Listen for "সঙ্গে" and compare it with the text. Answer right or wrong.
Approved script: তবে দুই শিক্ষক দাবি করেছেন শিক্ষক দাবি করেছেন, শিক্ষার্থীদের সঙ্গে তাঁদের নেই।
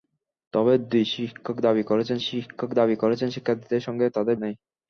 right